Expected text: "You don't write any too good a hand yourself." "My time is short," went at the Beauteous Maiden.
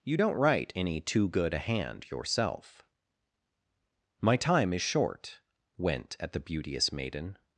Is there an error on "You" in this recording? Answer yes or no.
no